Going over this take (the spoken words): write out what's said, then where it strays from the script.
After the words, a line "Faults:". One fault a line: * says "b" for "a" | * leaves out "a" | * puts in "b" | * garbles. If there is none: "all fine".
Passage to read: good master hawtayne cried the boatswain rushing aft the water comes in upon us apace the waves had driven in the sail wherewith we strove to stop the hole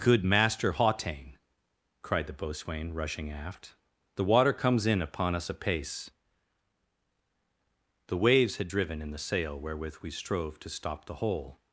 good master hawtayne cried the boatswain rushing aft the water comes in upon us apace the waves had driven in the sail wherewith we strove to stop the hole
Faults:
all fine